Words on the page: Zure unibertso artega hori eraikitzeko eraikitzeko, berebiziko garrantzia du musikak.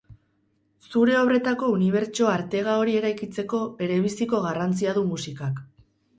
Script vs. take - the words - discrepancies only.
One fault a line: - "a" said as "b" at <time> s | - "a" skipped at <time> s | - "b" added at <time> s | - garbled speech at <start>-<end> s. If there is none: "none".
- "obretako" added at 1.2 s
- "eraikitzeko" skipped at 3.6 s